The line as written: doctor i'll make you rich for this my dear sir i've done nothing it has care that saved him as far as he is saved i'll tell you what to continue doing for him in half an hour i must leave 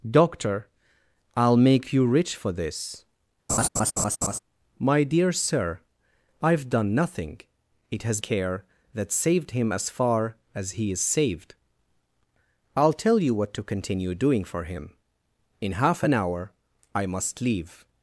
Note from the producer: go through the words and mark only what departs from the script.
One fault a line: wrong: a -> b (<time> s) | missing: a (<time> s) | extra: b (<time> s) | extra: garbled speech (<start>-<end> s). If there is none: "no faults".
no faults